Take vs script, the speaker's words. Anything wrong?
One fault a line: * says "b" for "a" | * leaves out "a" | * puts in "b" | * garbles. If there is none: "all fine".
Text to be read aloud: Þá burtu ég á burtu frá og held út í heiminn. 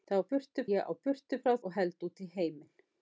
all fine